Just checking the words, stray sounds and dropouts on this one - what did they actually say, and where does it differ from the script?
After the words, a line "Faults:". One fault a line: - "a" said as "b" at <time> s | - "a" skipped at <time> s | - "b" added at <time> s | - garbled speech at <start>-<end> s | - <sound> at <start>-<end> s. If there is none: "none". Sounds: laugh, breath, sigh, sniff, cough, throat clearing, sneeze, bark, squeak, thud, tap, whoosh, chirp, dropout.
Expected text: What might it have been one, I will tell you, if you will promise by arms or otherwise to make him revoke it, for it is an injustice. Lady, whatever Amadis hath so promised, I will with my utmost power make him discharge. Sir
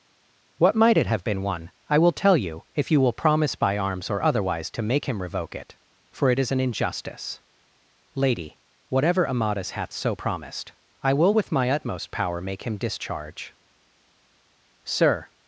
What might it have been one, I will tell you, if you will promise by arms or otherwise to make him revoke it, for it is an injustice. Lady, whatever Amadis hath so promised, I will with my utmost power make him discharge. Sir
Faults:
none